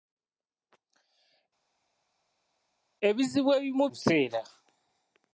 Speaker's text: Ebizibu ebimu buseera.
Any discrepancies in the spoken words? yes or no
no